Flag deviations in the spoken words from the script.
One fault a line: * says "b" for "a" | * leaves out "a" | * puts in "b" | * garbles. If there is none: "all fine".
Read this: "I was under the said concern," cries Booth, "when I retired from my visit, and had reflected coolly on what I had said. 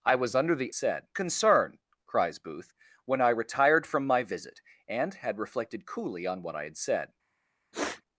all fine